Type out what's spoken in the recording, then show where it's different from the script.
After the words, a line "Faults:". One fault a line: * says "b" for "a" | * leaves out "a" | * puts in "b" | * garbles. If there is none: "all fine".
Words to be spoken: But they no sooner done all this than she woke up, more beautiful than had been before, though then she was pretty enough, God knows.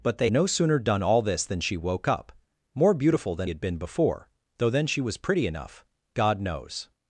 But they no sooner done all this than she woke up, more beautiful than had been before, though then she was pretty enough, God knows.
Faults:
all fine